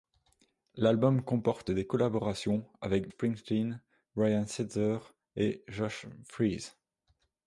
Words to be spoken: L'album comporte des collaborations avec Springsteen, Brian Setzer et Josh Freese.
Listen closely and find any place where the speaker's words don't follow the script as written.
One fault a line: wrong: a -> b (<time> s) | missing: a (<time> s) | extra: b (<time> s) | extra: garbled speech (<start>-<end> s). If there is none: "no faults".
no faults